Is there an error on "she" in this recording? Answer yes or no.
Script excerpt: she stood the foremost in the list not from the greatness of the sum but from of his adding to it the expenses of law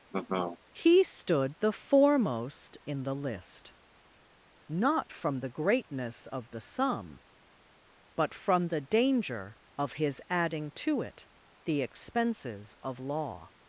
yes